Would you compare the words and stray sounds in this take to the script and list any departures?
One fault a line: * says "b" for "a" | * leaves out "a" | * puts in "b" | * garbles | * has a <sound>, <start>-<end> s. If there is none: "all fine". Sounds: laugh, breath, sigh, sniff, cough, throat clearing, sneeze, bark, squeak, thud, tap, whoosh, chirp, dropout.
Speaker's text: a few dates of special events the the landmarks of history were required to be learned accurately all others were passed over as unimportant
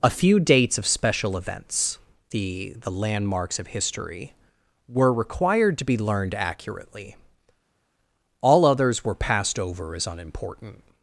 all fine